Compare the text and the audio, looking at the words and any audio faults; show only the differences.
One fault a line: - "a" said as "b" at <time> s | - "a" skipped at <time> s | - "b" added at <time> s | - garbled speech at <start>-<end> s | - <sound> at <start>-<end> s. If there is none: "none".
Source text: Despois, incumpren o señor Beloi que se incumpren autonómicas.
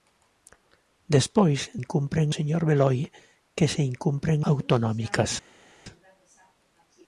none